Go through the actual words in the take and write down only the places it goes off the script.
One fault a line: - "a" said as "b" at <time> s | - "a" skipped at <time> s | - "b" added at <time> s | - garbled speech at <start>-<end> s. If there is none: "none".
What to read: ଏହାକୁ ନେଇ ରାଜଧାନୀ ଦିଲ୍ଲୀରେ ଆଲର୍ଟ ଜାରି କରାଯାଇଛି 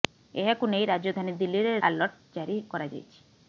none